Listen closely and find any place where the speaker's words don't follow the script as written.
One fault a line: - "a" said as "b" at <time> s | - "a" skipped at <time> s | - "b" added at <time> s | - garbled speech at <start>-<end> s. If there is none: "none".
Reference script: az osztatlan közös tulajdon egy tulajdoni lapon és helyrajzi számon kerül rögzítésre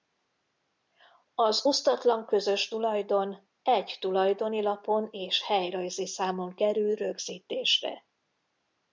none